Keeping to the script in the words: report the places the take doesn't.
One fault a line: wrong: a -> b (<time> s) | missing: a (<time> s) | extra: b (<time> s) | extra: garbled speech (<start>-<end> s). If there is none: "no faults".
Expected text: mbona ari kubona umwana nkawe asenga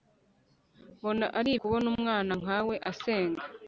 no faults